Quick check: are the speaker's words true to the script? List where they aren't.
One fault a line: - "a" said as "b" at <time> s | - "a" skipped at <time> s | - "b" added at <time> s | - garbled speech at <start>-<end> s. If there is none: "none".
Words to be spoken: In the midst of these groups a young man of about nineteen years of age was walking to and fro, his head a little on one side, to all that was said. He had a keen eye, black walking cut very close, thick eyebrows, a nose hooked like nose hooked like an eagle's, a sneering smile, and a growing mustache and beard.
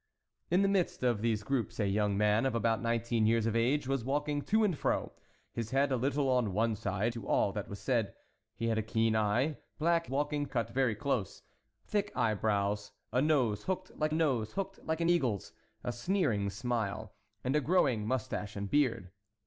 none